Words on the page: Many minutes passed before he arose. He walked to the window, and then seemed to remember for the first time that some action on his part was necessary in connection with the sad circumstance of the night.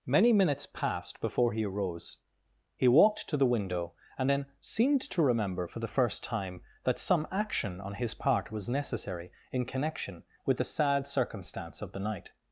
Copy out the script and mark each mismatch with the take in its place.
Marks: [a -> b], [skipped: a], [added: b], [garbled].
Many minutes passed before he arose. He walked to the window, and then seemed to remember for the first time that some action on his part was necessary in connection with the sad circumstance of the night.